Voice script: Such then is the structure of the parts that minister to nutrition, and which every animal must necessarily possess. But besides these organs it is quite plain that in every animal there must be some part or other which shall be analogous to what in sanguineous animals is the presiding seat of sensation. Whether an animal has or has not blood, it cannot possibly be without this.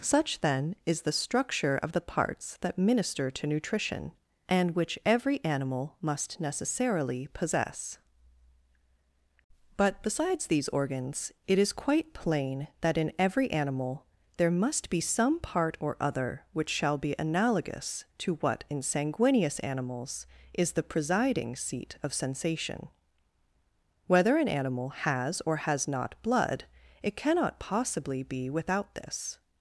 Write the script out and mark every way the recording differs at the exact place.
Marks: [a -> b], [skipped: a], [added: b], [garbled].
Such then is the structure of the parts that minister to nutrition, and which every animal must necessarily possess. But besides these organs it is quite plain that in every animal there must be some part or other which shall be analogous to what in sanguineous animals is the presiding seat of sensation. Whether an animal has or has not blood, it cannot possibly be without this.